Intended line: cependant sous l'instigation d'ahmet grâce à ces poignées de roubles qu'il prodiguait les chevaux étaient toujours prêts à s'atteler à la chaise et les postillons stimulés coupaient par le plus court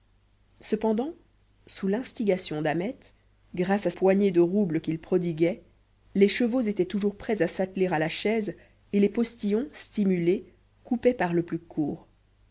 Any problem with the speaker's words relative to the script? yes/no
yes